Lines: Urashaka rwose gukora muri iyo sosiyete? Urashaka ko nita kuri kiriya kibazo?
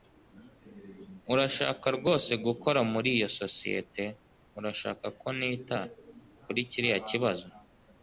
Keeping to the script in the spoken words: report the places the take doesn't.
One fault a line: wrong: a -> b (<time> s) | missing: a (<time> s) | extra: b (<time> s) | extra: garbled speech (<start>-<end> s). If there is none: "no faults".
no faults